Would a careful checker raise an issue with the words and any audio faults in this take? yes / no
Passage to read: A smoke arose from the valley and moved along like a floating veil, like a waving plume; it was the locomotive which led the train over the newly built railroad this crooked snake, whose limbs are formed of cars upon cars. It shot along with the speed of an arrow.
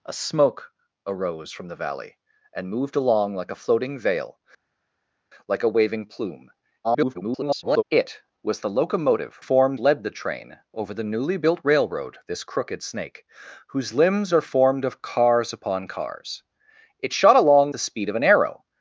yes